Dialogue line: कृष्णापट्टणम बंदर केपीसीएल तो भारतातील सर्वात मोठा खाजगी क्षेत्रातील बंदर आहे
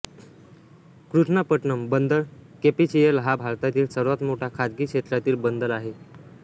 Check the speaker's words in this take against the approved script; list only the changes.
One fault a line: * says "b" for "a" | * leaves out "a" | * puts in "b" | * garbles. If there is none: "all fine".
* says "हा" for "तो"